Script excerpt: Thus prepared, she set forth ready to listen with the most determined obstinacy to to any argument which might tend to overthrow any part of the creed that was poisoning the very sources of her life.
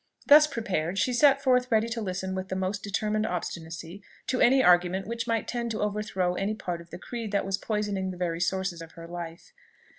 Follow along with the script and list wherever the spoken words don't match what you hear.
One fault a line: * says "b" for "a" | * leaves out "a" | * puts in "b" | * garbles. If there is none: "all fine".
* leaves out "to"